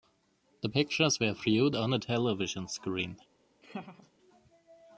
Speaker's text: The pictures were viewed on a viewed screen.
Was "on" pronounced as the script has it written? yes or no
yes